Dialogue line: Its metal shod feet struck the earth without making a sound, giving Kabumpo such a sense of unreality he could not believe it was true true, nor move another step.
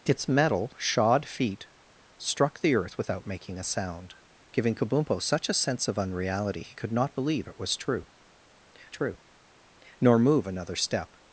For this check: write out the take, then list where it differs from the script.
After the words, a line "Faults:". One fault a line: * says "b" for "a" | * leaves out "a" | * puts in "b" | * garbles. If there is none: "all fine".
Its metal shod feet struck the earth without making a sound, giving Kabumpo such a sense of unreality he could not believe it was true true, nor move another step.
Faults:
all fine